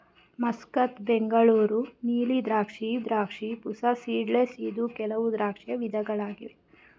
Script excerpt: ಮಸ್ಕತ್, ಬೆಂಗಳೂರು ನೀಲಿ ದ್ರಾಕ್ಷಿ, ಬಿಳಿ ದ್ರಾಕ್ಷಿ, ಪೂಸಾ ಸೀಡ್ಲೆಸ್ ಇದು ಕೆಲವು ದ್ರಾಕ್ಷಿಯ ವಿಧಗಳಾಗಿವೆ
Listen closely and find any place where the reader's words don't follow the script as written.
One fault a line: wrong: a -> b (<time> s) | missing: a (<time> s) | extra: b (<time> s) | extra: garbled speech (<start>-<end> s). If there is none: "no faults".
missing: ಬಿಳಿ (3.0 s)